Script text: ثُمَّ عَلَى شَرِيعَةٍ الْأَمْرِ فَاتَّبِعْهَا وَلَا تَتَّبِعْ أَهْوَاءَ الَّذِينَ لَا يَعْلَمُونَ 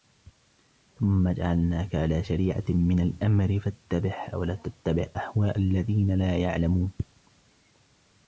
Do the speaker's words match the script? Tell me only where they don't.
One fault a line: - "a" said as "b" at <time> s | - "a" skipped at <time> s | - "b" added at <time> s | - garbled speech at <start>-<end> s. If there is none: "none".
- "جَعَلْنَاكَ" added at 1.3 s
- "مِنَ" added at 2.7 s